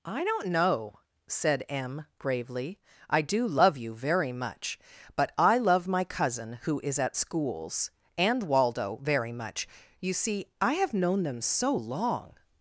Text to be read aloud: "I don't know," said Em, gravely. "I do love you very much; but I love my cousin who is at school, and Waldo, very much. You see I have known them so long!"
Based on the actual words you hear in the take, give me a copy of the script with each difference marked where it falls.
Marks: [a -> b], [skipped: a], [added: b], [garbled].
"I don't know," said Em, gravely. "I do love you very much; but I love my cousin who is at [school, -> schools] and Waldo, very much. You see I have known them so long!"